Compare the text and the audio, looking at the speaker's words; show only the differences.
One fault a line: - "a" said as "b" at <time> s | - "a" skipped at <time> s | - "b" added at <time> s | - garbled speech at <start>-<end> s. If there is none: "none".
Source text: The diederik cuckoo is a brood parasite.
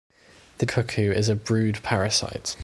- "diederik" skipped at 0.7 s